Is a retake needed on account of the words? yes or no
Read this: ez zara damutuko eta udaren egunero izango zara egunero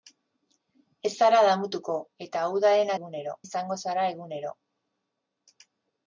no